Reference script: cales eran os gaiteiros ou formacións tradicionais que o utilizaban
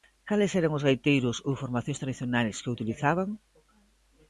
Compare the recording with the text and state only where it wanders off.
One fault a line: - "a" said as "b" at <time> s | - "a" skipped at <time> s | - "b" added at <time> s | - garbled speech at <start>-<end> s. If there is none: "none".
none